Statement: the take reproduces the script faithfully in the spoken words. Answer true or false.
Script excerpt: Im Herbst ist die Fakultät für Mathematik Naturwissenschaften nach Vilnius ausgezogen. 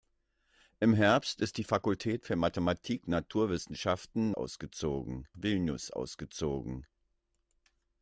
false